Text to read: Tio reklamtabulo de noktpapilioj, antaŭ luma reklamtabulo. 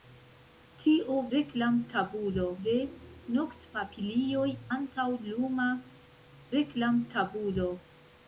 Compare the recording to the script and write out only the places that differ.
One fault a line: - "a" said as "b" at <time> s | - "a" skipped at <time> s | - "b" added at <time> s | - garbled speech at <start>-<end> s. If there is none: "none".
none